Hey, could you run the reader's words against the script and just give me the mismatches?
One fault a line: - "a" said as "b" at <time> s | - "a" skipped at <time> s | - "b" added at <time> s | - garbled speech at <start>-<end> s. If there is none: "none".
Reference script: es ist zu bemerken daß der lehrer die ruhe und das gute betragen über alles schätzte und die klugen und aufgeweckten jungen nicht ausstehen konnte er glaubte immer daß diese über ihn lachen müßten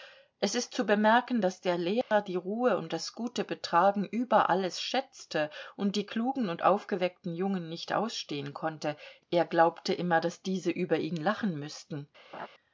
none